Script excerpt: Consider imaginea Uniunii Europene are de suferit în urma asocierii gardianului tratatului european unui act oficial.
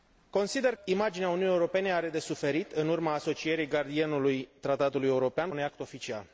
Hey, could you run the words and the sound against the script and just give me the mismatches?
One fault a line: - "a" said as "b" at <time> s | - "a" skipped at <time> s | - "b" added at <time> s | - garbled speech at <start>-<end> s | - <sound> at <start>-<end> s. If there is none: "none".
none